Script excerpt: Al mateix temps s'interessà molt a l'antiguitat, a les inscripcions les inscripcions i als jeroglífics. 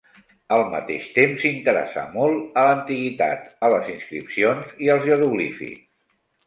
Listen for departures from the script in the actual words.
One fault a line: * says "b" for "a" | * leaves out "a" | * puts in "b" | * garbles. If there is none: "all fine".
* leaves out "les inscripcions"